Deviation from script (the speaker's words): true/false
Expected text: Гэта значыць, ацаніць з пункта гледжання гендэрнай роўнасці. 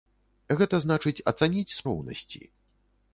true